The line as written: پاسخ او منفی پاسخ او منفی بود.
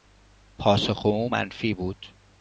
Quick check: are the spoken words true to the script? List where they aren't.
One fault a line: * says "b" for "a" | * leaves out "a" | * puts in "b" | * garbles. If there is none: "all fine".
* leaves out "پاسخ او منفی"